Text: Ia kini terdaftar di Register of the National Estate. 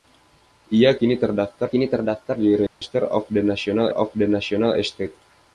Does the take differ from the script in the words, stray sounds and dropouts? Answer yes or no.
yes